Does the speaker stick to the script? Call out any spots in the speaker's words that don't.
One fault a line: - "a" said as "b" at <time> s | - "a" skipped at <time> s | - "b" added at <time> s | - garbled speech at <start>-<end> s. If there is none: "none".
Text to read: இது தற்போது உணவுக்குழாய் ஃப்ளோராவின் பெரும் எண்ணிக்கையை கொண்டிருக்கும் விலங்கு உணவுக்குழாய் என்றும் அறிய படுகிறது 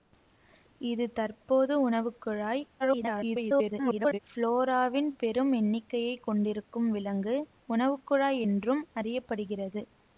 - garbled speech at 2.8-4.2 s